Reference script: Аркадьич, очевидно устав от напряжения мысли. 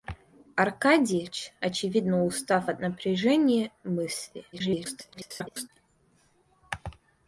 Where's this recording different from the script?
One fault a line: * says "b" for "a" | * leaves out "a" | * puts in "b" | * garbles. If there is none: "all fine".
* garbles